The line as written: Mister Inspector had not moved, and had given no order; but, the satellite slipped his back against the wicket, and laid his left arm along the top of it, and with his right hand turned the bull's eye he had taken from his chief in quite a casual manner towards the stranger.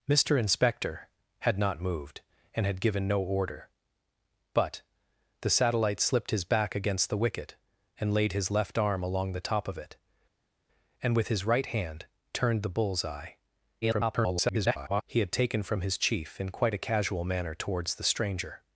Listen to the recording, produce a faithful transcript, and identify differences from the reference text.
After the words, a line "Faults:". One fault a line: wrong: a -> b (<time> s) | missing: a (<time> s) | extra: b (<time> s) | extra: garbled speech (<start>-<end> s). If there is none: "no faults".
Mister Inspector had not moved, and had given no order; but, the satellite slipped his back against the wicket, and laid his left arm along the top of it, and with his right hand turned the bull's eye [garbled] he had taken from his chief in quite a casual manner towards the stranger.
Faults:
extra: garbled speech (13.8-15.0 s)